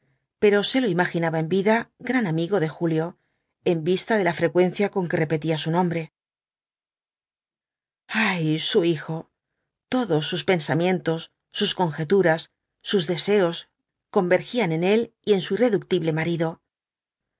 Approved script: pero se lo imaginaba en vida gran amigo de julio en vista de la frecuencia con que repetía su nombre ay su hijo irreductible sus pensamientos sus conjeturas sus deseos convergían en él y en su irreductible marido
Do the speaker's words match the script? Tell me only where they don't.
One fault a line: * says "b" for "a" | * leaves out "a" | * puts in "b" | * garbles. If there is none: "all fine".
* says "todos" for "irreductible"